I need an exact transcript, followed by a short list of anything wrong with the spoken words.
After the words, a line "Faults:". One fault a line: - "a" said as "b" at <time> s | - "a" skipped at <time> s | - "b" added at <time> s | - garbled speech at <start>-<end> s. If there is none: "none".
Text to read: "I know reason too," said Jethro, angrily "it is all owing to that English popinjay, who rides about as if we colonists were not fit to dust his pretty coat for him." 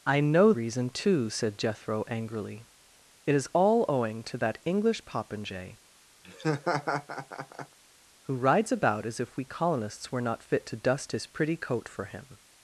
"I know reason too," said Jethro, angrily "it is all owing to that English popinjay, who rides about as if we colonists were not fit to dust his pretty coat for him."
Faults:
none